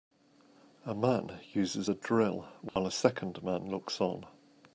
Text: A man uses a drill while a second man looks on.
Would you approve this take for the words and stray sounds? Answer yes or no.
no